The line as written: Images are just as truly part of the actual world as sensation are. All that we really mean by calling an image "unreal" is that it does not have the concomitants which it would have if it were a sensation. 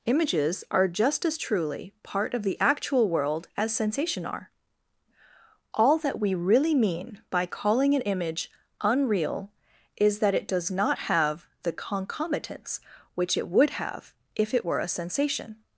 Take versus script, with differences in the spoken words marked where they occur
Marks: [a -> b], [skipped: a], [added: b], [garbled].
Images are just as truly part of the actual world as sensation are. All that we really mean by calling an image "unreal" is that it does not have the concomitants which it would have if it were a sensation.